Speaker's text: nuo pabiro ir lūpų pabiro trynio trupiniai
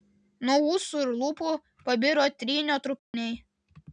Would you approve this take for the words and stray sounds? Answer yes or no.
no